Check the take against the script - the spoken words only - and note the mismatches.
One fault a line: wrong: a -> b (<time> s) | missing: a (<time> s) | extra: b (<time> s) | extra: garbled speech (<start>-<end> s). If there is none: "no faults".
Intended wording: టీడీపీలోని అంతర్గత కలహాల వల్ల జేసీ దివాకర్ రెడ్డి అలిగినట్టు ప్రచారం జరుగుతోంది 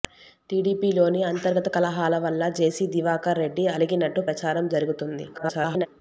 extra: garbled speech (5.3-5.9 s)